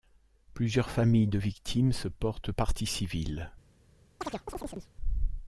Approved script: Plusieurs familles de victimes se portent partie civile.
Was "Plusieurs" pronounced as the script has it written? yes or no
yes